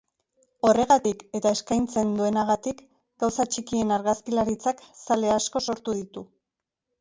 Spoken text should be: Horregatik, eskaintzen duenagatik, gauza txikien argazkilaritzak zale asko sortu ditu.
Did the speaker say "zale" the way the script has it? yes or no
yes